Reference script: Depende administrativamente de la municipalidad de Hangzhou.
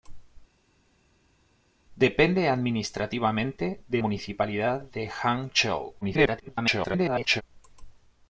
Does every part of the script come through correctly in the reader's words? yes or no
no